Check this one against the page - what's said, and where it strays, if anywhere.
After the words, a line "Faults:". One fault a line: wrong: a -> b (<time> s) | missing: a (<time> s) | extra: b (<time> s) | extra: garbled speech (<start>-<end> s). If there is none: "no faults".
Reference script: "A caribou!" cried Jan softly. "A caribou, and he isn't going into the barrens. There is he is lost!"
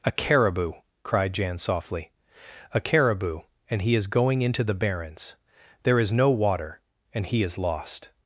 "A caribou!" cried Jan softly. "A caribou, and he is going into the barrens. There is no water, and he is lost!"
Faults:
wrong: isn't -> is (4.0 s)
extra: no water and (6.1 s)